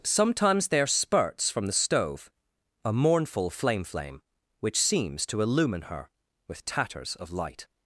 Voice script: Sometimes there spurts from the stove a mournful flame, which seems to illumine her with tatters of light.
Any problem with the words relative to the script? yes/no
yes